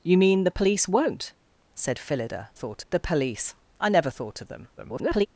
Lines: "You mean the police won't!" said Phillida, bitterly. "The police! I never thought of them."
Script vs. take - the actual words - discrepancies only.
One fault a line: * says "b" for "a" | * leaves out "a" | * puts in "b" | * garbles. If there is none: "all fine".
* says "thought" for "bitterly"
* garbles